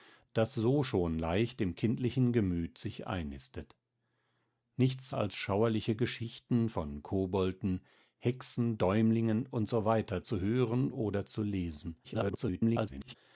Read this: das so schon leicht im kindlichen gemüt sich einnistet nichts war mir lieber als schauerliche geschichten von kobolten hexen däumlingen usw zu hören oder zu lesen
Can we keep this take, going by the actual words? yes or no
no